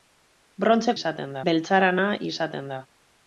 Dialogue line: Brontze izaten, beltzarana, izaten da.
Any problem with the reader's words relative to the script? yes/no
no